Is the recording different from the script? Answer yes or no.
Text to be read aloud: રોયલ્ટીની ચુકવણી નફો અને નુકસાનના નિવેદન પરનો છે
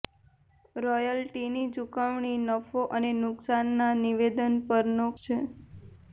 no